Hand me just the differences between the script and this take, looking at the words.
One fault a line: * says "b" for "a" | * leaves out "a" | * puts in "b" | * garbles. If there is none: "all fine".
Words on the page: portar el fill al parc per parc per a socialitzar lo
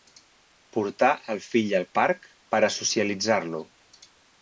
* leaves out "parc per"